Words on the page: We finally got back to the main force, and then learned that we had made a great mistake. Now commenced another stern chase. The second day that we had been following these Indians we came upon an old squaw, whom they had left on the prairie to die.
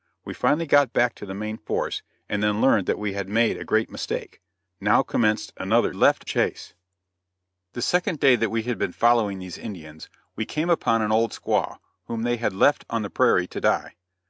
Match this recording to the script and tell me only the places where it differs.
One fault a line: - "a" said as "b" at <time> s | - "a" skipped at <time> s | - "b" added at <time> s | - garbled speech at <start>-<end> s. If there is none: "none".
- "stern" said as "left" at 5.9 s